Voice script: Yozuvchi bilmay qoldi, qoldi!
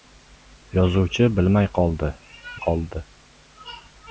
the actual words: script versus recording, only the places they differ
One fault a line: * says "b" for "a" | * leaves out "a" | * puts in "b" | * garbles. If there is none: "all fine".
all fine